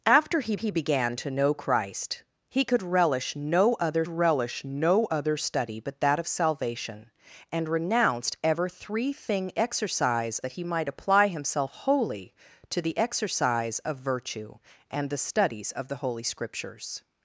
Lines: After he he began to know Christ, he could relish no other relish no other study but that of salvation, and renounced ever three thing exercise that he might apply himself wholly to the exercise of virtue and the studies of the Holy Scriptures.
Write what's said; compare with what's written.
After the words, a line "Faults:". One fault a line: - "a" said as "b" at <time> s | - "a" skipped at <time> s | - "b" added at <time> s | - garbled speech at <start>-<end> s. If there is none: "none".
After he he began to know Christ, he could relish no other relish no other study but that of salvation, and renounced ever three thing exercise that he might apply himself wholly to the exercise of virtue and the studies of the Holy Scriptures.
Faults:
none